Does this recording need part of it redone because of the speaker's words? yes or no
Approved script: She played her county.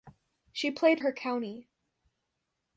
no